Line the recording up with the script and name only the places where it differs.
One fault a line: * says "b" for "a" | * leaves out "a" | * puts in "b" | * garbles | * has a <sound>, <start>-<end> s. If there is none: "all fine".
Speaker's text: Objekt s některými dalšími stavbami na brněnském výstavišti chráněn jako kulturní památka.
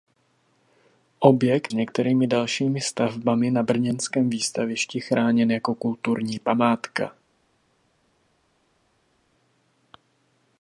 all fine